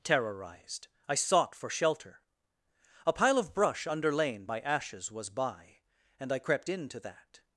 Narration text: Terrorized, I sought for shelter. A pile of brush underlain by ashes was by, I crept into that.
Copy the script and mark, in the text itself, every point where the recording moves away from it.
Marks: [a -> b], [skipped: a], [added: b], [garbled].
Terrorized, I sought for shelter. A pile of brush underlain by ashes was by, [added: and] I crept into that.